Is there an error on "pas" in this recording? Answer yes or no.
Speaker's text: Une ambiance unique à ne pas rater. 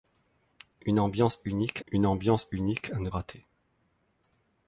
yes